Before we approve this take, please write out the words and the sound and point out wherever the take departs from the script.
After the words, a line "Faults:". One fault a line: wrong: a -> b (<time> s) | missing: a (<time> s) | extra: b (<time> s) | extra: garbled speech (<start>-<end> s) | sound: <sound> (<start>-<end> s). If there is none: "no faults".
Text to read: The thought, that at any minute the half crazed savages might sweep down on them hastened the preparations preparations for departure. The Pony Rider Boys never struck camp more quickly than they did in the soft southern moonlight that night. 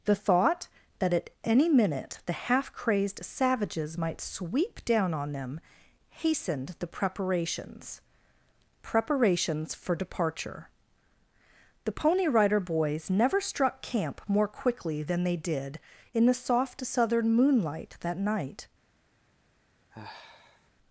The thought, that at any minute the half crazed savages might sweep down on them hastened the preparations preparations for departure. The Pony Rider Boys never struck camp more quickly than they did in the soft southern moonlight that night.
Faults:
sound: sigh (19.9-20.7 s)